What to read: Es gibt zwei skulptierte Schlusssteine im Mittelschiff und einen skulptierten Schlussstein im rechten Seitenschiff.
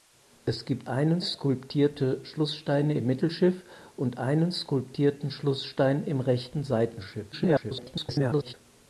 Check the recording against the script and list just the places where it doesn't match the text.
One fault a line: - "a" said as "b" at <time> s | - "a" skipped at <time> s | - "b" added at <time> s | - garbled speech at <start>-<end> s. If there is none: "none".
- "zwei" said as "einen" at 0.9 s
- garbled speech at 7.3-8.5 s